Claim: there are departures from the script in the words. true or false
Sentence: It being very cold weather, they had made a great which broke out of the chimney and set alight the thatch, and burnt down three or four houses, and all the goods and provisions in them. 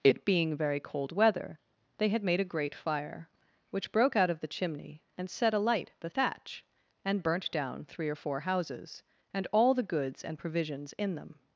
true